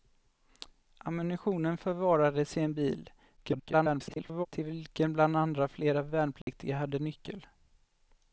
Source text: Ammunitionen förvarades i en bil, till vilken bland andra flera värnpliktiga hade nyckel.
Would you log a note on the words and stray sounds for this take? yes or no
yes